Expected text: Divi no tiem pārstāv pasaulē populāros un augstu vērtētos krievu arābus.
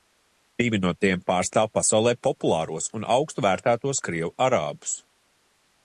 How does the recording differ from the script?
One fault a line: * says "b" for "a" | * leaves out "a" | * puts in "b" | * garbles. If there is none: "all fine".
all fine